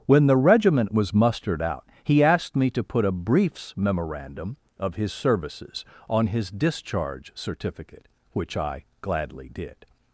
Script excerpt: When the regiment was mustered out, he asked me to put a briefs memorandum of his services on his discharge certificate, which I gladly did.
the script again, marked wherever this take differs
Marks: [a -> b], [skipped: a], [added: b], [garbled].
When the regiment was mustered out, he asked me to put a briefs memorandum of his services on his discharge certificate, which I gladly did.